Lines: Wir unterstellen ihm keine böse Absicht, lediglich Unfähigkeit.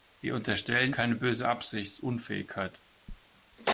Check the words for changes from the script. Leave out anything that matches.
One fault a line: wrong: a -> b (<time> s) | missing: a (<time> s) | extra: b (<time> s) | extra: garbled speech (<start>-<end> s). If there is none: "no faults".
missing: ihm (0.9 s)
missing: lediglich (2.0 s)